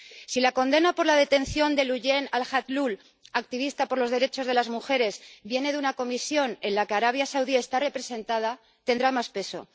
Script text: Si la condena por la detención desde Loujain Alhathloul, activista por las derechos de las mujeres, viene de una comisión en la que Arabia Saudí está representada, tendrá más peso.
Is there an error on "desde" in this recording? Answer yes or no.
yes